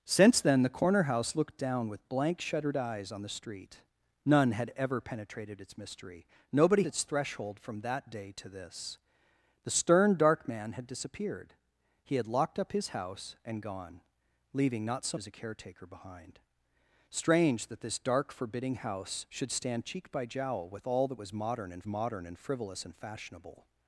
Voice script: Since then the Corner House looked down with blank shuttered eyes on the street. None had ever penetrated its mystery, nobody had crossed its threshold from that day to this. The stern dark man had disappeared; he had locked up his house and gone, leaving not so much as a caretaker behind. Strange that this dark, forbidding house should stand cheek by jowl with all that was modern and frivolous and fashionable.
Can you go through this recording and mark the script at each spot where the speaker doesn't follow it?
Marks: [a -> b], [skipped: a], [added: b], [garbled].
Since then the Corner House looked down with blank shuttered eyes on the street. None had ever penetrated its mystery, nobody [skipped: had crossed] its threshold from that day to this. The stern dark man had disappeared; he had locked up his house and gone, leaving not so [skipped: much] as a caretaker behind. Strange that this dark, forbidding house should stand cheek by jowl with all that was modern and [added: modern and] frivolous and fashionable.